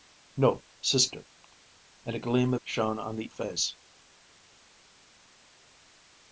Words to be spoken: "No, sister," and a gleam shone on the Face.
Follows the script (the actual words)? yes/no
yes